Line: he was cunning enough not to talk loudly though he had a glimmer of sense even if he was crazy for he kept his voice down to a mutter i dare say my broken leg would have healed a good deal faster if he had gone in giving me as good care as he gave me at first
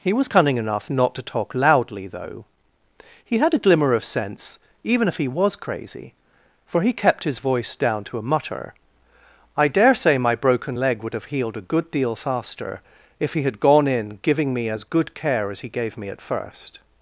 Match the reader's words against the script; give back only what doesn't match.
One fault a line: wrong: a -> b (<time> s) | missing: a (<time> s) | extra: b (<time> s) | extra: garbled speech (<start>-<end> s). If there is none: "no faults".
no faults